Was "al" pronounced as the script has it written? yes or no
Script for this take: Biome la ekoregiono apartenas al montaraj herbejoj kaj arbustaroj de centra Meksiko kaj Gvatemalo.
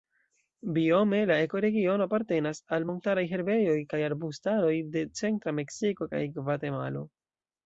yes